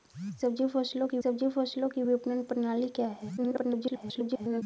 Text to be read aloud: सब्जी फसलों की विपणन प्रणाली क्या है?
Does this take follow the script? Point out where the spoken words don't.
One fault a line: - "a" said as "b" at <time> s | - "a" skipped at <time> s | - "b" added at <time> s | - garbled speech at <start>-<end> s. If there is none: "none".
- "सब्जी फसलों की" added at 1.2 s
- garbled speech at 3.4-4.6 s